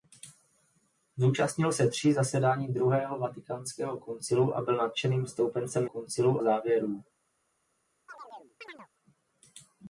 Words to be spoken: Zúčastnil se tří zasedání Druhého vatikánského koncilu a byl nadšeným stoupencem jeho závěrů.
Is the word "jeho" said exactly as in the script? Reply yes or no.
no